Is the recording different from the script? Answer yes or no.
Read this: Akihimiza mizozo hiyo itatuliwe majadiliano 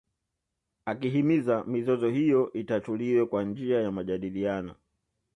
yes